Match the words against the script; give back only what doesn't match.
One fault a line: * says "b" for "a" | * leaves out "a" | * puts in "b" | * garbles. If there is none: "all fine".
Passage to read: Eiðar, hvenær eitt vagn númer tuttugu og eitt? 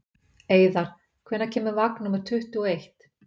* says "kemur" for "eitt"